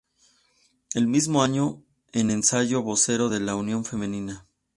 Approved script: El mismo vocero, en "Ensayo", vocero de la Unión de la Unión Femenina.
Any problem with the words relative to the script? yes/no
yes